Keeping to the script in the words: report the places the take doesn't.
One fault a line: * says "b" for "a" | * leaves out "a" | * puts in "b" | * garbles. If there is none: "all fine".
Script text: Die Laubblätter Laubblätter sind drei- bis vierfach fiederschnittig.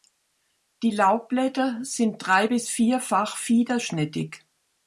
* leaves out "Laubblätter"